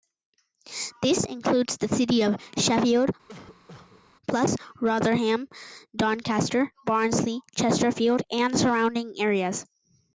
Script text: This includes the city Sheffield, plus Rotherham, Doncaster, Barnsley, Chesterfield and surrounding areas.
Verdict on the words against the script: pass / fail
fail